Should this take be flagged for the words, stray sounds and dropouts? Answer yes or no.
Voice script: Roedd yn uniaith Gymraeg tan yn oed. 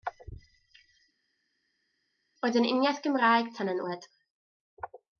no